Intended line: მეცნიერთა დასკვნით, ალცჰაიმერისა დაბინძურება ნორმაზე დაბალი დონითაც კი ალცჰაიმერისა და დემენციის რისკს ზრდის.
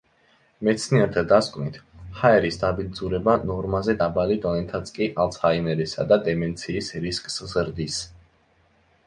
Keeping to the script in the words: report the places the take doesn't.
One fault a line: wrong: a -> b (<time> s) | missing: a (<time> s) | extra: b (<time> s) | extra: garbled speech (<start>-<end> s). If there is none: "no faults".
wrong: ალცჰაიმერისა -> ჰაერის (2.2 s)